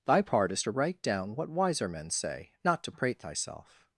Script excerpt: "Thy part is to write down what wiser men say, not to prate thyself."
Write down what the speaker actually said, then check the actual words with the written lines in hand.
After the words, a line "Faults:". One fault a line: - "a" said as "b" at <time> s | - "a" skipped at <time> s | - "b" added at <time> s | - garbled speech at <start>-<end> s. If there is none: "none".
"Thy part is to write down what wiser men say, not to prate thyself."
Faults:
none